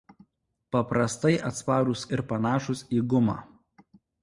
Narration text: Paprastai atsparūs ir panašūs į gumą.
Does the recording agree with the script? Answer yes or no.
yes